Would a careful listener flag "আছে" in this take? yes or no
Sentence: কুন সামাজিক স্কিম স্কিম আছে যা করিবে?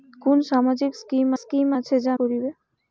no